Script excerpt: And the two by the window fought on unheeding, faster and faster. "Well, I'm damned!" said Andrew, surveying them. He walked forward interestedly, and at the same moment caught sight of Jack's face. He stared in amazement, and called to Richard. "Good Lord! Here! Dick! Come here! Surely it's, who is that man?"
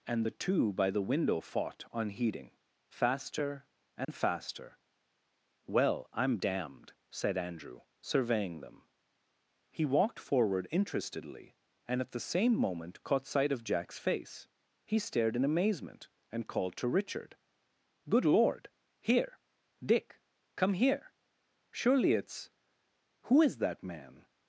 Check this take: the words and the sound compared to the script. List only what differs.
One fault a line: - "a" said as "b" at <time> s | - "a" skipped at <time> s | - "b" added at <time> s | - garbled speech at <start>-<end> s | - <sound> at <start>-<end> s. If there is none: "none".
- "on" skipped at 1.9 s
- dropout at 4.0-4.1 s